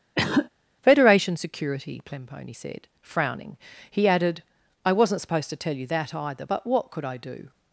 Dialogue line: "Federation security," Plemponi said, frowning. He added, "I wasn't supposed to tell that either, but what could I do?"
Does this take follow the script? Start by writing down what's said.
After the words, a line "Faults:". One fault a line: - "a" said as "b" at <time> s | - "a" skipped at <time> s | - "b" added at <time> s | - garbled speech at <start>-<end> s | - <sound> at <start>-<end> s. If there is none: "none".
"Federation security," Plemponi said, frowning. He added, "I wasn't supposed to tell you that either, but what could I do?"
Faults:
- cough at 0.2-0.5 s
- "you" added at 5.7 s